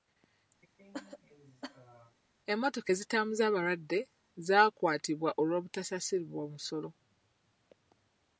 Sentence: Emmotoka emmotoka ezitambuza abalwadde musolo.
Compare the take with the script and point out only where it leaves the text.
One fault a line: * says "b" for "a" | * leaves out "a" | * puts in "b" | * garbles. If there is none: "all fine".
* leaves out "emmotoka"
* puts in "zaakwatibwa olw'obutasasulibwa"